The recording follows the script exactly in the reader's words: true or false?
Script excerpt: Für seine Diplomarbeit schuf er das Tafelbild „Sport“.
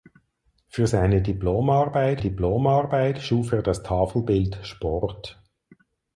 false